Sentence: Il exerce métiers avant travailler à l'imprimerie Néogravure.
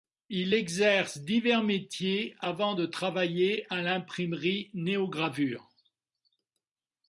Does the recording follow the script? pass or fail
fail